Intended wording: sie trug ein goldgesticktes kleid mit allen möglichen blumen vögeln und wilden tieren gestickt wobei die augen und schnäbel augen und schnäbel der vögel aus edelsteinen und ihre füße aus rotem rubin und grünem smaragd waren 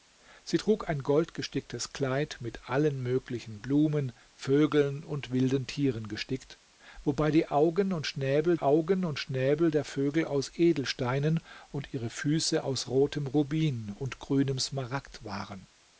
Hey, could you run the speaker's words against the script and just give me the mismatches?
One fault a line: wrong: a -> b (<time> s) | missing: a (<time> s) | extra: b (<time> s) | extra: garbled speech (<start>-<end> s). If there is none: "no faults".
no faults